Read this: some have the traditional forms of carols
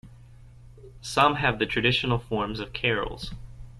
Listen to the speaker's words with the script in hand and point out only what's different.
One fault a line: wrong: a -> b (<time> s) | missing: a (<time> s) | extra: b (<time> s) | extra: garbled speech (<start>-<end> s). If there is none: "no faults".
no faults